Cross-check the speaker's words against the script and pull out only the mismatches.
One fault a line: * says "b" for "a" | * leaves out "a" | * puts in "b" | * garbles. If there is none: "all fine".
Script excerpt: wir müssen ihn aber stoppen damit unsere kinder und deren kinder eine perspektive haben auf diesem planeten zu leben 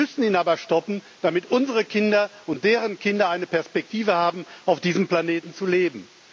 all fine